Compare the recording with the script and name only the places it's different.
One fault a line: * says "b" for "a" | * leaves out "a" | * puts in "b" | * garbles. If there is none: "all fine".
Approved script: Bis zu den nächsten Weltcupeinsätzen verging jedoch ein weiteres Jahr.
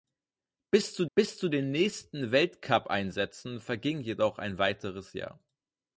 * puts in "bis zu"